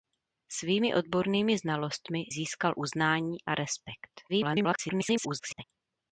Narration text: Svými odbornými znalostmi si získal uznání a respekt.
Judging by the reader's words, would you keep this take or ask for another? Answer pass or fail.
fail